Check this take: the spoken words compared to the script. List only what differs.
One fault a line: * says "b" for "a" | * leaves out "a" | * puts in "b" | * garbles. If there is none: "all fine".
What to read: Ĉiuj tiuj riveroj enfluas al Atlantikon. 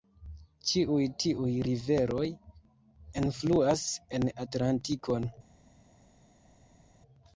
* says "en" for "al"